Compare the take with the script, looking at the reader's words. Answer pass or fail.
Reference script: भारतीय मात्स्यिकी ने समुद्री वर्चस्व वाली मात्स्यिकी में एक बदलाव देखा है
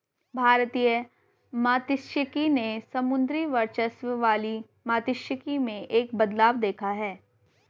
pass